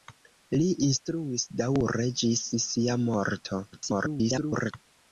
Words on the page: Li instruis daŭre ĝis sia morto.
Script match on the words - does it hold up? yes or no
no